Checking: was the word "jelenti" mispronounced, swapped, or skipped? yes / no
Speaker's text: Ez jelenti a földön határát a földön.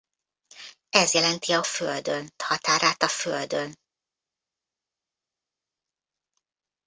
no